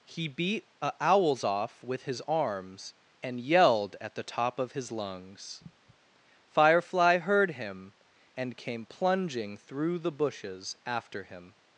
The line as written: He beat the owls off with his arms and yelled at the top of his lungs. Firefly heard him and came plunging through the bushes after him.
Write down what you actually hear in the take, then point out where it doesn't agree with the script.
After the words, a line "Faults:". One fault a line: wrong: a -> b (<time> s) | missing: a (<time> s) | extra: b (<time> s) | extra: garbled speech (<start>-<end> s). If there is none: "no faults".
He beat a owls off with his arms and yelled at the top of his lungs. Firefly heard him and came plunging through the bushes after him.
Faults:
wrong: the -> a (0.8 s)